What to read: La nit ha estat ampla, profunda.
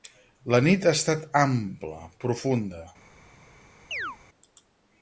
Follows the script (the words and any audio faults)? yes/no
no